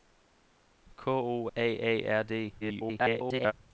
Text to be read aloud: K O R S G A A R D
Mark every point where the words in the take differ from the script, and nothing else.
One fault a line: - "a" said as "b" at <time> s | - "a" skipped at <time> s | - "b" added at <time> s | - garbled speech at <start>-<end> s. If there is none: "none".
- "R S G" skipped at 1.5 s
- garbled speech at 2.6-3.5 s